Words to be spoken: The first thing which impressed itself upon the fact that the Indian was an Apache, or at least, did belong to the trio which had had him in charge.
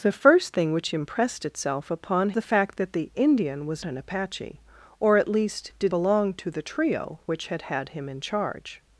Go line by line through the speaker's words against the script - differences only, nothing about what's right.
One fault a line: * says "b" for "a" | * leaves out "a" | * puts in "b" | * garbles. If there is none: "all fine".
all fine